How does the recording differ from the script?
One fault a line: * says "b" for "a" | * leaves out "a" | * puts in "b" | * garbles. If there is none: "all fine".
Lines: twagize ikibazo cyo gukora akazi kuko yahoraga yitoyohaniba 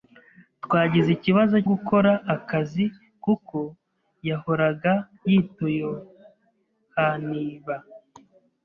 * leaves out "cyo"